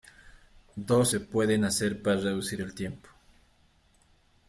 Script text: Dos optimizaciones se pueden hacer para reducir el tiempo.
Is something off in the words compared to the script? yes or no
yes